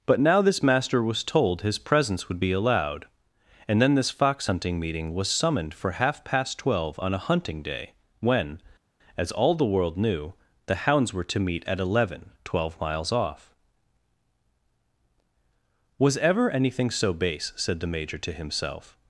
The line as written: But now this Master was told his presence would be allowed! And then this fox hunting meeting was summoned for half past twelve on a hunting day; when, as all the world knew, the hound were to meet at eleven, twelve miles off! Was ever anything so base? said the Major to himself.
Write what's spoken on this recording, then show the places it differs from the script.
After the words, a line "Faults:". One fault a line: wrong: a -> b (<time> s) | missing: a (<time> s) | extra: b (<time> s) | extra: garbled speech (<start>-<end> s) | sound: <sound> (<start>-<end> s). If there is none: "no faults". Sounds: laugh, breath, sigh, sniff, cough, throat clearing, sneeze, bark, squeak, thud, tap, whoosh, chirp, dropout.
But now this Master was told his presence would be allowed! And then this fox hunting meeting was summoned for half past twelve on a hunting day; when, as all the world knew, the hounds were to meet at eleven, twelve miles off! Was ever anything so base? said the Major to himself.
Faults:
wrong: hound -> hounds (10.9 s)